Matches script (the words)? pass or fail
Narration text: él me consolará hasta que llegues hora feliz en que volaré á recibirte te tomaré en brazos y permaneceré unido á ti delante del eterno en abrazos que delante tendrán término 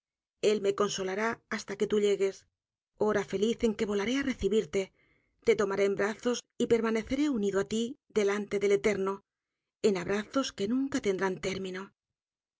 fail